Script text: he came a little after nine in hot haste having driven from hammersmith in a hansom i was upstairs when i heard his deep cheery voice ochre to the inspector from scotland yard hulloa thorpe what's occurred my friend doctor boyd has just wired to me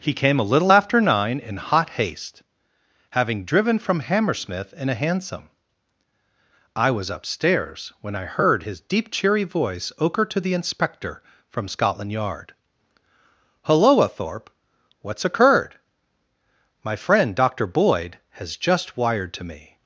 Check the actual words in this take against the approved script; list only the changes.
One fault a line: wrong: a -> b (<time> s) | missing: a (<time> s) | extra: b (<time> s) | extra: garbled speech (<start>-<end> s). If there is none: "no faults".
no faults